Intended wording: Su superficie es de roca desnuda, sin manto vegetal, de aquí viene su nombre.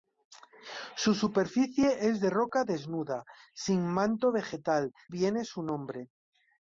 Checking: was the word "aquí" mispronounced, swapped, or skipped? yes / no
yes